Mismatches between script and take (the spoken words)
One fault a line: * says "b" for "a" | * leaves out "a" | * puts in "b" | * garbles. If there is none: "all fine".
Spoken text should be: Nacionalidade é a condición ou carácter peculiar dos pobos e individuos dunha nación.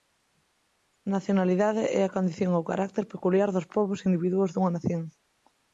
all fine